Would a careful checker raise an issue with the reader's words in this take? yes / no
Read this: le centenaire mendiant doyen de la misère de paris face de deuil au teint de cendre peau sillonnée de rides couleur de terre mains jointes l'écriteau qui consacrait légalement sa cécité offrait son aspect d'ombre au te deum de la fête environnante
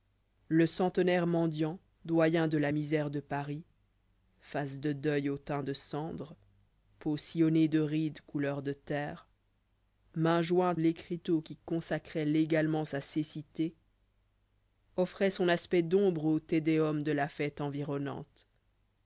no